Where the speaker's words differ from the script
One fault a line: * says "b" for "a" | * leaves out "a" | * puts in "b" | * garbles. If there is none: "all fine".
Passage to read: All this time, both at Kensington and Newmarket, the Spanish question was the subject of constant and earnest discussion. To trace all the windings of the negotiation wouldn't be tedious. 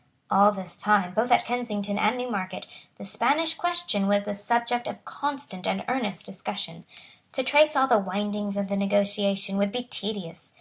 * says "would" for "wouldn't"